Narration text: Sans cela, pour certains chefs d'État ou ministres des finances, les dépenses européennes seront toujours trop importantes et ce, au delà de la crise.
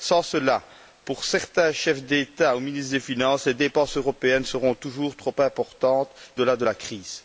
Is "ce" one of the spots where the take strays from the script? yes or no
yes